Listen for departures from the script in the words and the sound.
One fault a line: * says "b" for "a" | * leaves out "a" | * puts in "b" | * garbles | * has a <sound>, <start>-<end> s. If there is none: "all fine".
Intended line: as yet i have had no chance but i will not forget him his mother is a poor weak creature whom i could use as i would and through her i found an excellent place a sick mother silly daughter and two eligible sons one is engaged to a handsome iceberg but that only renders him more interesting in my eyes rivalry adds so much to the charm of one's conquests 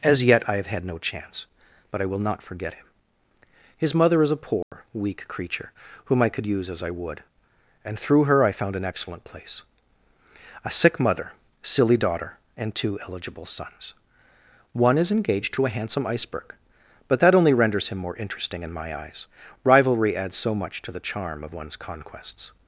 * has a dropout, 4.6-4.7 s